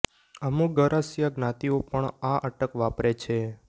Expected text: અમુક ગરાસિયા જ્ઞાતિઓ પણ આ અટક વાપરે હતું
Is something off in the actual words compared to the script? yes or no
yes